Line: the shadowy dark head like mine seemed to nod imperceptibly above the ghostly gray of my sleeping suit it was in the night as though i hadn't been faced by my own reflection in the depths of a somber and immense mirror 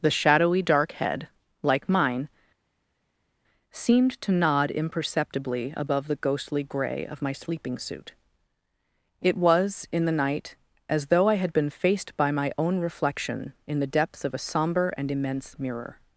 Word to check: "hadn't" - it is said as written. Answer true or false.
false